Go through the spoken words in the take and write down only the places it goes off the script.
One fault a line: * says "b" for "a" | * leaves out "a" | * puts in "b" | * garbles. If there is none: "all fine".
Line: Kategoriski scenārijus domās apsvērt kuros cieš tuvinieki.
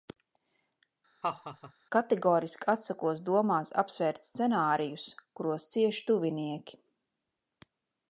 * says "atsakos" for "scenārijus"
* puts in "scenārijus"